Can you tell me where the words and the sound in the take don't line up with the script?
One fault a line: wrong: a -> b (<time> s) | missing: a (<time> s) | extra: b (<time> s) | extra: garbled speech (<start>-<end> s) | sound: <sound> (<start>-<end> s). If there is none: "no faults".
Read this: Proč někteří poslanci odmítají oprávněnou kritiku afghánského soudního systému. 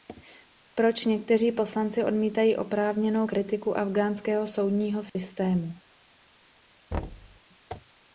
sound: dropout (5.1-5.2 s)
sound: thud (6.9-7.4 s)